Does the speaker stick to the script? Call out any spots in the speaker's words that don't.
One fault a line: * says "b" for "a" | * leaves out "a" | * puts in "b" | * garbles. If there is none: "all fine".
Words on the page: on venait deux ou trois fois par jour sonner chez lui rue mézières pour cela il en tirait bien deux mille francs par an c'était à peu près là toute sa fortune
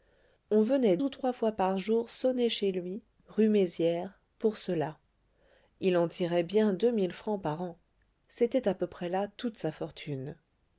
* leaves out "deux"